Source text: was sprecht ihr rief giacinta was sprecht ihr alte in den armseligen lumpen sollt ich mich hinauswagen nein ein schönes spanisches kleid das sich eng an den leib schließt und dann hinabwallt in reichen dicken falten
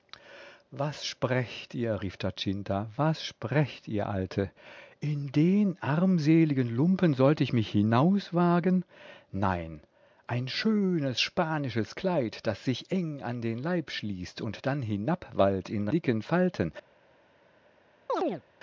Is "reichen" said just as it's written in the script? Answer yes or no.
no